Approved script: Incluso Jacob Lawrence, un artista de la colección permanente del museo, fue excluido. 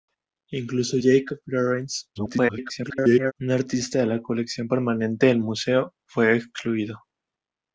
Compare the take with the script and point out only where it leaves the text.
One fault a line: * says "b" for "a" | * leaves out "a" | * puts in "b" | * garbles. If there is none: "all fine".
* garbles